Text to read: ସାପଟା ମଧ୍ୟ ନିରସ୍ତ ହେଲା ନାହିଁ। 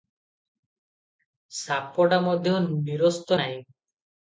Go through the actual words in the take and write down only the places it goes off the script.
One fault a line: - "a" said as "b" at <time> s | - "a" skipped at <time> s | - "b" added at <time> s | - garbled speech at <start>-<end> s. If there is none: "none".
- "ହେଲା" skipped at 3.4 s